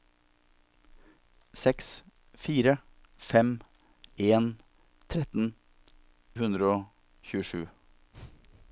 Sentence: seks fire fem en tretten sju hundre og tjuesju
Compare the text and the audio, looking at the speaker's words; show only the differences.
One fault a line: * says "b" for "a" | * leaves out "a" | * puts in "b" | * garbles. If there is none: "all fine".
* leaves out "sju"